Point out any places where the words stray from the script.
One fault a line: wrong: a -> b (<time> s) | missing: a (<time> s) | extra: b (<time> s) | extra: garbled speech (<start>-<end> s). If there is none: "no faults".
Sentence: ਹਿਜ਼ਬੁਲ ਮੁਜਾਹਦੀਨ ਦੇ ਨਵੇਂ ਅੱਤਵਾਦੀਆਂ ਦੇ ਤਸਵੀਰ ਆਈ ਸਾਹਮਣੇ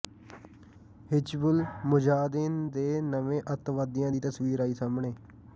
wrong: ਦੇ -> ਦੀ (4.1 s)